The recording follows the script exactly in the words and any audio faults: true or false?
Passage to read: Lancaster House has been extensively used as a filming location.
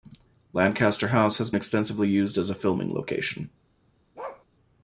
false